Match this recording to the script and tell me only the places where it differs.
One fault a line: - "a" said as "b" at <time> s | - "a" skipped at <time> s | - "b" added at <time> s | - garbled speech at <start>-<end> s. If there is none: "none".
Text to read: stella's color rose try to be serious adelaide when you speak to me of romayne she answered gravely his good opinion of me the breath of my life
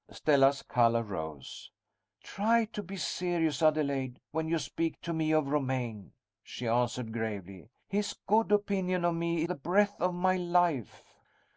none